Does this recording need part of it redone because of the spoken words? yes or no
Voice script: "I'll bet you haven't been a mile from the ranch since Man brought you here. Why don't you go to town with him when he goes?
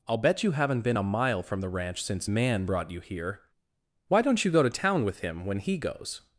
no